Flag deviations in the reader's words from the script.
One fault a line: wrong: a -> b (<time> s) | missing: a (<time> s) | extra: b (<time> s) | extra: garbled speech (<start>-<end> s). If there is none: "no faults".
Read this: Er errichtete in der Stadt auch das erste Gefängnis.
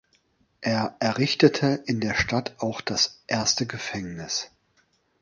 no faults